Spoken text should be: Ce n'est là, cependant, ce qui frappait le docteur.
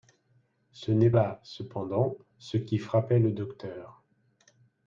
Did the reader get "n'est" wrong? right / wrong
right